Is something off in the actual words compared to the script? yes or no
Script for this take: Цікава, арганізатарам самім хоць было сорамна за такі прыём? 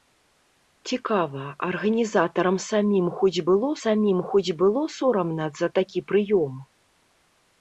yes